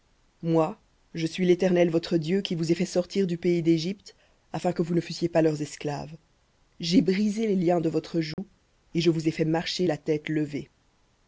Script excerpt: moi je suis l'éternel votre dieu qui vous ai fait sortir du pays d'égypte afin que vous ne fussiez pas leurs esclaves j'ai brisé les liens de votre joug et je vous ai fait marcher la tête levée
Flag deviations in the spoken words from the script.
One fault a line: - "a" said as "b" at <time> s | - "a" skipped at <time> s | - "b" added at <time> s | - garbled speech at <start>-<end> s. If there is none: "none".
none